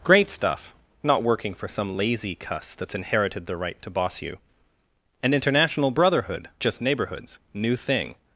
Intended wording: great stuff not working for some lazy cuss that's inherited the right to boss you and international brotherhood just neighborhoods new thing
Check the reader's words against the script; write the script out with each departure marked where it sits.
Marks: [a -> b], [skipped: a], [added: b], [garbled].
great stuff not working for some lazy cuss that's inherited the right to boss you and international brotherhood just neighborhoods new thing